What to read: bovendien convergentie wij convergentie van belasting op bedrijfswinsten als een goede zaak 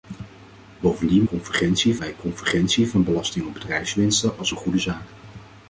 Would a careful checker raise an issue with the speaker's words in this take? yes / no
no